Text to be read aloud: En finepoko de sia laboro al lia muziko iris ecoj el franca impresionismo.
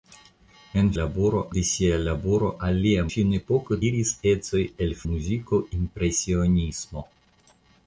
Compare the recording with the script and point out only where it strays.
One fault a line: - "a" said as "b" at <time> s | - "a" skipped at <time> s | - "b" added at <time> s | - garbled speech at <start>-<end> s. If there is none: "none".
- "finepoko" said as "laboro" at 0.9 s
- "muziko" said as "finepoko" at 3.1 s
- "franca" said as "muziko" at 5.0 s